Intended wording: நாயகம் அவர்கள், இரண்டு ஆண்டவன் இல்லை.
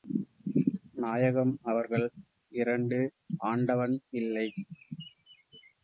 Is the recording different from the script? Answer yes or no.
no